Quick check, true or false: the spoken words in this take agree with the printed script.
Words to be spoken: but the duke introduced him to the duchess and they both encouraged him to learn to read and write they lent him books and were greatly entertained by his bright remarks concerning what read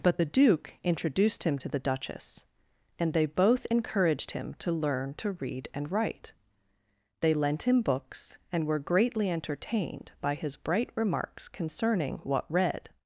true